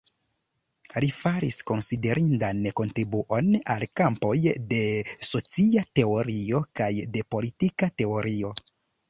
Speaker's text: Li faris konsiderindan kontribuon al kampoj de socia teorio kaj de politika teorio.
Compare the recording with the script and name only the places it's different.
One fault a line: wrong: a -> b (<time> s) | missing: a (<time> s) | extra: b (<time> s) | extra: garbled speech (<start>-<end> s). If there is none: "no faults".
no faults